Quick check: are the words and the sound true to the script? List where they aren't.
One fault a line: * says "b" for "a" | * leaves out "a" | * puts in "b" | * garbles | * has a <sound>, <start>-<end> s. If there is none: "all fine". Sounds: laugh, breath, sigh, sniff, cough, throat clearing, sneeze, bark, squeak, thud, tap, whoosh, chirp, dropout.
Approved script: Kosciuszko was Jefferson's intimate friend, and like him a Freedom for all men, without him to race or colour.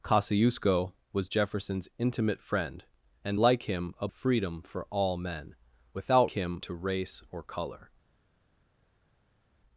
all fine